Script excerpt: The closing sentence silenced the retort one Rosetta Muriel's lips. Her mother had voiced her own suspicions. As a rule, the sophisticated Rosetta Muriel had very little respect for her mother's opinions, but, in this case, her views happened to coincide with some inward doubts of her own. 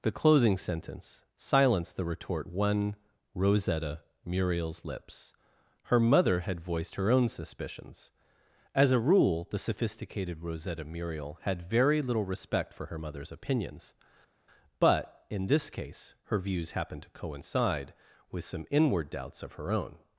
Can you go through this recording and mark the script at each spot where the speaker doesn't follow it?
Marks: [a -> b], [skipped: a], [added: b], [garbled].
The closing sentence silenced the retort one Rosetta Muriel's lips. Her mother had voiced her own suspicions. As a rule, the sophisticated Rosetta Muriel had very little respect for her mother's opinions, but, in this case, her views happened to coincide with some inward doubts of her own.